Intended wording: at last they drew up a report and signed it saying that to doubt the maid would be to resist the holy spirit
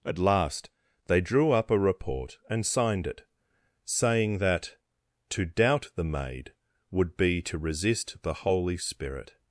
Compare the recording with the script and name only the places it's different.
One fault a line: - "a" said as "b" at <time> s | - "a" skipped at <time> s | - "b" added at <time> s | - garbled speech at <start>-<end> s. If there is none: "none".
none